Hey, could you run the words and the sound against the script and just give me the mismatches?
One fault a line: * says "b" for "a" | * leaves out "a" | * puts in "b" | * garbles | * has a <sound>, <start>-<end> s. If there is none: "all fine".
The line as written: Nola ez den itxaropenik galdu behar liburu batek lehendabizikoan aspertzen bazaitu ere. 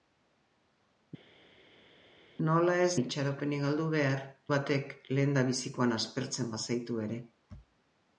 * leaves out "den"
* leaves out "liburu"